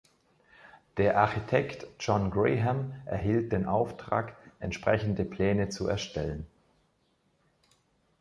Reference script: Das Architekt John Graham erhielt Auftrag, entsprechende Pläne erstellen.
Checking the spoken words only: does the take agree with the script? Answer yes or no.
no